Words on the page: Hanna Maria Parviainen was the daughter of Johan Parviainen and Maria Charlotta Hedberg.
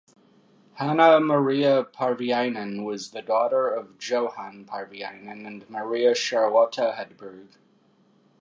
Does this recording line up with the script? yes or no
yes